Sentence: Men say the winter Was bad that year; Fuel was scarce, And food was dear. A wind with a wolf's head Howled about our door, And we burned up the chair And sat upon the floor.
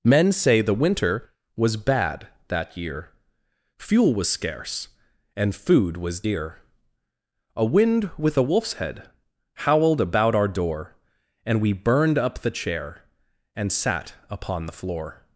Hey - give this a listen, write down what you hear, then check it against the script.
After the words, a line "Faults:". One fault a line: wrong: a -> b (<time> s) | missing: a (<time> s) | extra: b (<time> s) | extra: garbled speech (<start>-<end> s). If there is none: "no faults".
Men say the winter Was bad that year; Fuel was scarce, And food was dear. A wind with a wolf's head Howled about our door, And we burned up the chair And sat upon the floor.
Faults:
no faults